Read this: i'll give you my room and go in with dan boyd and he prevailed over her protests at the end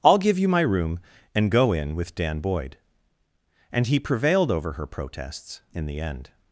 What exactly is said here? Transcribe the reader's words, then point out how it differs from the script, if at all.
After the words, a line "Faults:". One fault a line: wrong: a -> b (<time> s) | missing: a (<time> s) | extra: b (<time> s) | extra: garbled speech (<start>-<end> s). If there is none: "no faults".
i'll give you my room and go in with dan boyd and he prevailed over her protests in the end
Faults:
wrong: at -> in (5.7 s)